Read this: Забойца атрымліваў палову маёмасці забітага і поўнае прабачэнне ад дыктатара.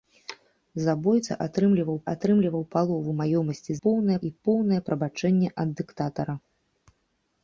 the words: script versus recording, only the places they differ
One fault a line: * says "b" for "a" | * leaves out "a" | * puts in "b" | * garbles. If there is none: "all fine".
* puts in "атрымліваў"
* says "поўнае" for "забітага"